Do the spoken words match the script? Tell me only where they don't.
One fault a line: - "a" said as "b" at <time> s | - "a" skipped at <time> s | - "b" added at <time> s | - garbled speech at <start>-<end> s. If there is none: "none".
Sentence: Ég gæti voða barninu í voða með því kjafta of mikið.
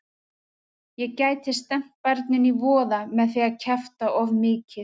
- "voða" said as "stefnt" at 1.6 s
- "að" added at 3.5 s